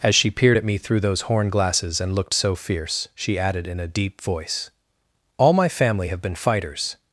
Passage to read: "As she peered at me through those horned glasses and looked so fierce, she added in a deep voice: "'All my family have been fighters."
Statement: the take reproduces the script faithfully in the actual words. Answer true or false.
false